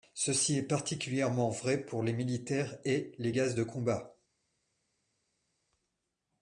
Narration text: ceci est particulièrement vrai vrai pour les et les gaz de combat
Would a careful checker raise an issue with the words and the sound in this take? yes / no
yes